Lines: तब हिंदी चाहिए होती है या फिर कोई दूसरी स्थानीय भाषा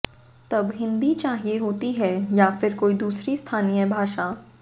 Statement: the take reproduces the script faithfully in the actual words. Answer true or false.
true